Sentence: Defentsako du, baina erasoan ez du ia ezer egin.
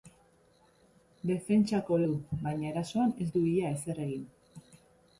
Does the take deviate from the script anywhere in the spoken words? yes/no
no